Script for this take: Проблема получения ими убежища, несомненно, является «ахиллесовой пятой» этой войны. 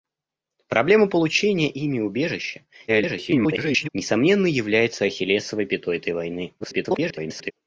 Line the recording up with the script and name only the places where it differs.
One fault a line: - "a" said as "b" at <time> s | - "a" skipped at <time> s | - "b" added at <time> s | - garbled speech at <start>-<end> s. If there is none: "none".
- garbled speech at 2.9-3.9 s
- garbled speech at 6.6-7.5 s